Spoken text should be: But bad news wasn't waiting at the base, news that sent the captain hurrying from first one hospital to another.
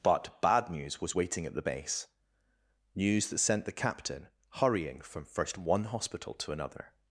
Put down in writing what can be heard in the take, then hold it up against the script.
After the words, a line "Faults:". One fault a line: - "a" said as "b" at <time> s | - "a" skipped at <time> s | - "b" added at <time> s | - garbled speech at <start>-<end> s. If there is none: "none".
But bad news was waiting at the base, news that sent the captain hurrying from first one hospital to another.
Faults:
- "wasn't" said as "was" at 1.0 s